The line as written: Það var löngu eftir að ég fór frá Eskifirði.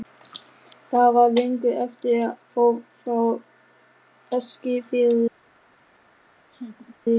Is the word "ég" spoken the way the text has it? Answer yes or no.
no